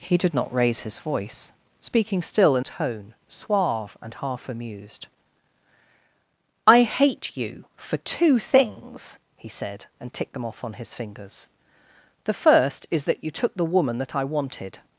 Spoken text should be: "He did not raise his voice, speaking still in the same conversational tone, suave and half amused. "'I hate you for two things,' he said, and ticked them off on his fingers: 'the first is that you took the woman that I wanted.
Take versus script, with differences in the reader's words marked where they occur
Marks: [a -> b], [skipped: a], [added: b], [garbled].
"He did not raise his voice, speaking still in [skipped: the same conversational] tone, suave and half amused. "'I hate you for two things,' he said, and ticked them off on his fingers: 'the first is that you took the woman that I wanted.